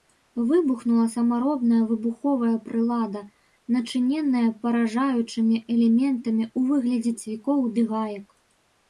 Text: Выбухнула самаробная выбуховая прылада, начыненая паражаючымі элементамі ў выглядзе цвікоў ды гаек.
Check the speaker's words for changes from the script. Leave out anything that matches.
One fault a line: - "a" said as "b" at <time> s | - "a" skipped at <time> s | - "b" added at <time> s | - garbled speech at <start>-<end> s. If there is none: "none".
none